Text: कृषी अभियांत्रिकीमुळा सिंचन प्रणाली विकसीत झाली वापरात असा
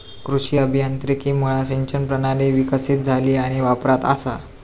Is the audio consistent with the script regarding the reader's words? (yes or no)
no